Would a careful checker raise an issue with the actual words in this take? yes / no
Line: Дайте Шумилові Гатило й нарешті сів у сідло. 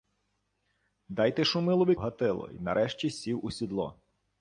no